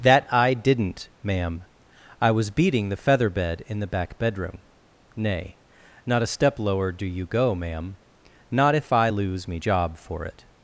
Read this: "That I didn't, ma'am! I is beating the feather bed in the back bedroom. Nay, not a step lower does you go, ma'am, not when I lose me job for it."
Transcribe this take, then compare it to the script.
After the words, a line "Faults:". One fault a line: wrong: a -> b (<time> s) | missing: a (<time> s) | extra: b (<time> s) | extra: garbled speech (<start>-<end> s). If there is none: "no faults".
"That I didn't, ma'am! I was beating the feather bed in the back bedroom. Nay, not a step lower do you go, ma'am, not if I lose me job for it."
Faults:
wrong: is -> was (2.3 s)
wrong: does -> do (6.9 s)
wrong: when -> if (8.7 s)